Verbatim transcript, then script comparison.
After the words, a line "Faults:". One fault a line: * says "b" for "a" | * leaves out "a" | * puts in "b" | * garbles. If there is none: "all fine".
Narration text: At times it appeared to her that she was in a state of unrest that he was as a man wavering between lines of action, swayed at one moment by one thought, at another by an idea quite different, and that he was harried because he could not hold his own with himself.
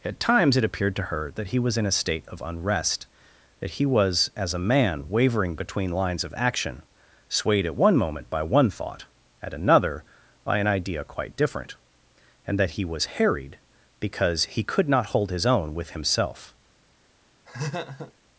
At times it appeared to her that he was in a state of unrest that he was as a man wavering between lines of action, swayed at one moment by one thought, at another by an idea quite different, and that he was harried because he could not hold his own with himself.
Faults:
* says "he" for "she"